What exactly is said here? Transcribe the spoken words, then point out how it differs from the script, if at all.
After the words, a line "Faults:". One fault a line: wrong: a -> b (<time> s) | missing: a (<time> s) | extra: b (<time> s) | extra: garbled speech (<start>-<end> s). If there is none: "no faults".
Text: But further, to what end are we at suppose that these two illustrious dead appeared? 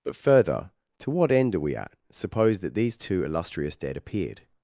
But further, to what end are we at suppose that these two illustrious dead appeared?
Faults:
no faults